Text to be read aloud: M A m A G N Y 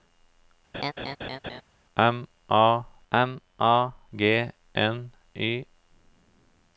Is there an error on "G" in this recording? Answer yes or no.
no